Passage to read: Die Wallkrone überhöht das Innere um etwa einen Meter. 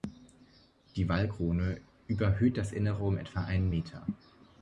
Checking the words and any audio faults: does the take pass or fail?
pass